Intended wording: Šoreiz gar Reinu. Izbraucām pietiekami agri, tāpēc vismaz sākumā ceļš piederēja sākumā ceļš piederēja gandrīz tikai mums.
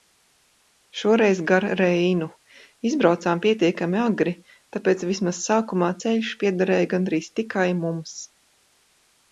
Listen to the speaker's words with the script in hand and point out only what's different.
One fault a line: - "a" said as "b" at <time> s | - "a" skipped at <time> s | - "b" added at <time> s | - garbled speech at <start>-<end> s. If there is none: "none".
- "sākumā ceļš piederēja" skipped at 6.9 s